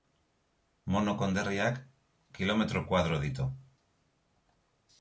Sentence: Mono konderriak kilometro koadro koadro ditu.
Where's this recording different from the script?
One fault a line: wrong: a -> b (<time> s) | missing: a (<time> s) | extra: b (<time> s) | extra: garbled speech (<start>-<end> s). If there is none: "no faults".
missing: koadro (3.2 s)